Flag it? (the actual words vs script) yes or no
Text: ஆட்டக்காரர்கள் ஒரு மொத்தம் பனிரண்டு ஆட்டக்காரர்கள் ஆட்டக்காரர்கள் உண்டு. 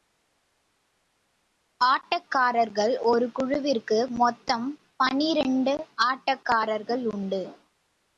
yes